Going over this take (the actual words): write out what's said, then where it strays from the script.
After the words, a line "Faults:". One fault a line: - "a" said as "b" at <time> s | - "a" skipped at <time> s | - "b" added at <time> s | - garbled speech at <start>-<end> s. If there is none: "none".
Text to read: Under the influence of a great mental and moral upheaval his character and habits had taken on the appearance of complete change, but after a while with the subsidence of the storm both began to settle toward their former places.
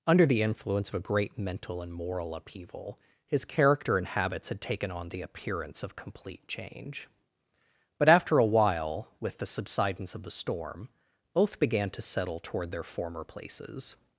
Under the influence of a great mental and moral upheaval his character and habits had taken on the appearance of complete change, but after a while with the subsidence of the storm both began to settle toward their former places.
Faults:
none